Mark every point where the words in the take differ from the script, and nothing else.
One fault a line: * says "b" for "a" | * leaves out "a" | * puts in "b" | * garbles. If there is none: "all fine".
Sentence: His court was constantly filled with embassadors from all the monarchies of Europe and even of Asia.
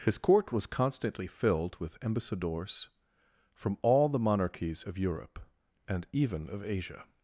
all fine